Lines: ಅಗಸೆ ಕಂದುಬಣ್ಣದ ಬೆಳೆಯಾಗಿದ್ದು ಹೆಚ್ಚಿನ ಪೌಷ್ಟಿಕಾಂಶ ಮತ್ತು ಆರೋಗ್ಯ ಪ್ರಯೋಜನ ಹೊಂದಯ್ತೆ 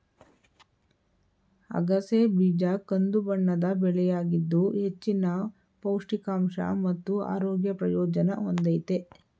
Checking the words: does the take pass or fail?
fail